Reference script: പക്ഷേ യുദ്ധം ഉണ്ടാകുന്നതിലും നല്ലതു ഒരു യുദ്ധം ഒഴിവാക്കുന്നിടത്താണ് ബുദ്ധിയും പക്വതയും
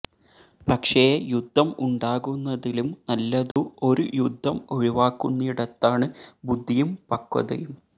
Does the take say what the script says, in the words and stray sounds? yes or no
no